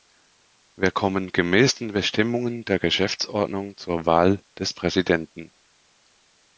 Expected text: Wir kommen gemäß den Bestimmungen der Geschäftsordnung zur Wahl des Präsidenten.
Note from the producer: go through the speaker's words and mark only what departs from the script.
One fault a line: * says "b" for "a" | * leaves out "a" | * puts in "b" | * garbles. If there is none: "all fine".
all fine